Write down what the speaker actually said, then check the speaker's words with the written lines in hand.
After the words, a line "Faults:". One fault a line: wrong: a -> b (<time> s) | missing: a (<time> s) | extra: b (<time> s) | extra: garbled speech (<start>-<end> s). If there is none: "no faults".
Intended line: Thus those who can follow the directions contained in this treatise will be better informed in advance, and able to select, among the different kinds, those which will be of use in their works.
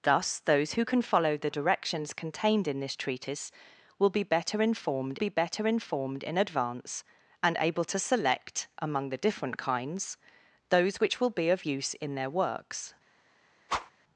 Thus those who can follow the directions contained in this treatise will be better informed be better informed in advance, and able to select, among the different kinds, those which will be of use in their works.
Faults:
extra: be better informed (5.1 s)